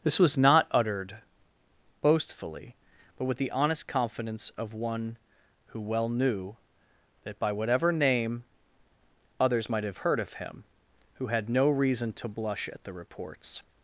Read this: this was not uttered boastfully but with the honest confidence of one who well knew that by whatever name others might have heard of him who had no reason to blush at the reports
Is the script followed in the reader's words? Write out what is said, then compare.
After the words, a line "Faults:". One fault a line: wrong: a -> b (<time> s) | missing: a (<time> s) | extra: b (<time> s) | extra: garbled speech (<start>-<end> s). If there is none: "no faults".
this was not uttered boastfully but with the honest confidence of one who well knew that by whatever name others might have heard of him who had no reason to blush at the reports
Faults:
no faults